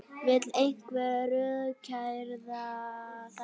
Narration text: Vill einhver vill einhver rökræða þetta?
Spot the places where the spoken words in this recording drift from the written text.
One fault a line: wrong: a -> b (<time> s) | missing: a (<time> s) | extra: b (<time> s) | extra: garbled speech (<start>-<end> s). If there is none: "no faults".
missing: vill einhver (1.3 s)